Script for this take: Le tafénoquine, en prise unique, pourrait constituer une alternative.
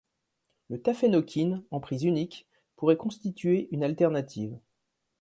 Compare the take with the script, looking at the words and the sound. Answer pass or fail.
pass